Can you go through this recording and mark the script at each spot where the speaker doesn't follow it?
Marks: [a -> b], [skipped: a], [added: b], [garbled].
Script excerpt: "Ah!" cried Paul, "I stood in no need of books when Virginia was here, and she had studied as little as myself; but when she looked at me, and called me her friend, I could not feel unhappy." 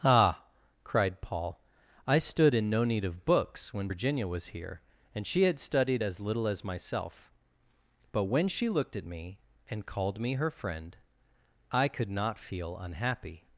"Ah!" cried Paul, "I stood in no need of books when Virginia was here, and she had studied as little as myself; but when she looked at me, and called me her friend, I could not feel unhappy."